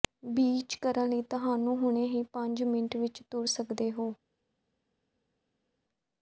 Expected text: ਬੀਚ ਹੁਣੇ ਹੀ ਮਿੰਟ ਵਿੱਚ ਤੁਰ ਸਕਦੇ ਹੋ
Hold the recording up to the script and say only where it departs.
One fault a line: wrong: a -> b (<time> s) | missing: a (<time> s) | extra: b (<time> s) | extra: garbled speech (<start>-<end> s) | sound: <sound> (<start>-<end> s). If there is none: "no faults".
extra: ਕਰਨ ਲਈ ਤੁਹਾਨੂੰ (0.8 s)
extra: ਪੰਜ (2.3 s)